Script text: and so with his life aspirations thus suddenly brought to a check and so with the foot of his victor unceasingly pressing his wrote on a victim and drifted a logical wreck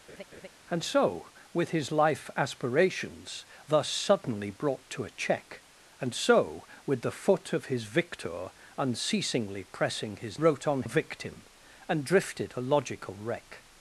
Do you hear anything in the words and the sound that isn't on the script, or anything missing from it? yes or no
yes